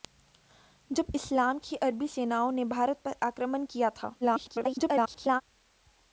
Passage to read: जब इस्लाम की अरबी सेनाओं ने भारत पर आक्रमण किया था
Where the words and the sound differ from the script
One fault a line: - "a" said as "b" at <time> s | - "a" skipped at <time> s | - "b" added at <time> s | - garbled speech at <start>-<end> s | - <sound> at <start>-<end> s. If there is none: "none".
- garbled speech at 4.2-5.4 s